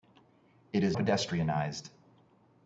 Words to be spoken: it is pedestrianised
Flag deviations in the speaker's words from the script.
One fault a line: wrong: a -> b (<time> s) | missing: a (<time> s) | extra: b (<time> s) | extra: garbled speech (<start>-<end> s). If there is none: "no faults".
no faults